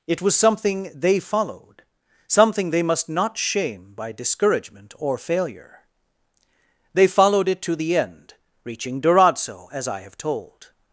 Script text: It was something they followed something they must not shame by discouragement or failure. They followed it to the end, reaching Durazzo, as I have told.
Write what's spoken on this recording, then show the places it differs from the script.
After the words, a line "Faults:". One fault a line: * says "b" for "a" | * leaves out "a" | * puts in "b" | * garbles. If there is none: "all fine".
It was something they followed something they must not shame by discouragement or failure. They followed it to the end, reaching Durazzo, as I have told.
Faults:
all fine